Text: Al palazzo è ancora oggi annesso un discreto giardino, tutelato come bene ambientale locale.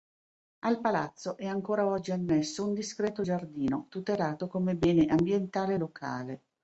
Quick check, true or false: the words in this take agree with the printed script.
true